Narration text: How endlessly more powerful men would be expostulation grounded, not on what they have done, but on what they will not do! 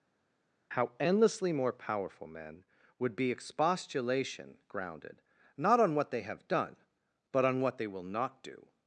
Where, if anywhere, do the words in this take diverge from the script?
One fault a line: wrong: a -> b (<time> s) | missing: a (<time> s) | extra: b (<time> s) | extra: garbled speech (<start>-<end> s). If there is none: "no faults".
no faults